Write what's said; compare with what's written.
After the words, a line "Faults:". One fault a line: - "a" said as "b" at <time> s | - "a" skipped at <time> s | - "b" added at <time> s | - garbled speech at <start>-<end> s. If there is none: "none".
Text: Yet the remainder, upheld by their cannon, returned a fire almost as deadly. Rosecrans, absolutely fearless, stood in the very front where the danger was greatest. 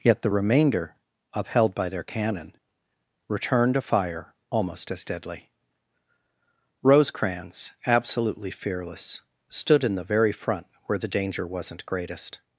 Yet the remainder, upheld by their cannon, returned a fire almost as deadly. Rosecrans, absolutely fearless, stood in the very front where the danger wasn't greatest.
Faults:
- "was" said as "wasn't" at 11.5 s